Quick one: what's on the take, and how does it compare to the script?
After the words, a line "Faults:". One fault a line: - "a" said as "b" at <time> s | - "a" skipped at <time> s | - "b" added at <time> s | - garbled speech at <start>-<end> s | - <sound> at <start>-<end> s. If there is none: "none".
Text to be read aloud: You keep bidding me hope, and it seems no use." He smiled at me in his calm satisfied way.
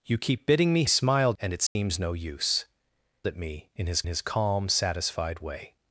You keep bidding me smiled, and it seems no use." At me in his his calm satisfied way.
Faults:
- "hope" said as "smiled" at 0.9 s
- dropout at 1.7-1.8 s
- "He smiled" skipped at 2.6 s
- "his" added at 4.0 s